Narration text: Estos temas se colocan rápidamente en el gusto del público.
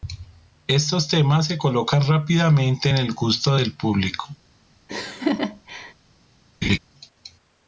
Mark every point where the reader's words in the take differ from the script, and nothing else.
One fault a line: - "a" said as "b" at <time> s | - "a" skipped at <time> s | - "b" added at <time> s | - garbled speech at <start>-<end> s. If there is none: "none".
none